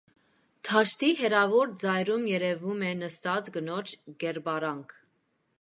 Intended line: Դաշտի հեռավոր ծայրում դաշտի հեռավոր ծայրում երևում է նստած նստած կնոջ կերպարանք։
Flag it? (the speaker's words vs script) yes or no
yes